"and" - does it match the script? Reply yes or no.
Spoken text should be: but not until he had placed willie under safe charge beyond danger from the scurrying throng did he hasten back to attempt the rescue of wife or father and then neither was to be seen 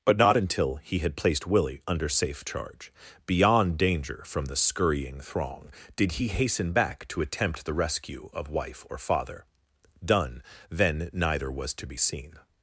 no